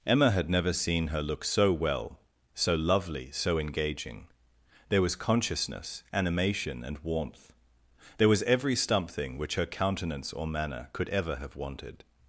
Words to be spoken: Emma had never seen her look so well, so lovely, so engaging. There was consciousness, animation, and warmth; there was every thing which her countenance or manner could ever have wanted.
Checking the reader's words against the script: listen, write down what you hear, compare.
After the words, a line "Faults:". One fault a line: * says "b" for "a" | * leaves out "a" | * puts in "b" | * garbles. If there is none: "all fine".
Emma had never seen her look so well, so lovely, so engaging. There was consciousness, animation, and warmth; there was every something which her countenance or manner could ever have wanted.
Faults:
* says "something" for "thing"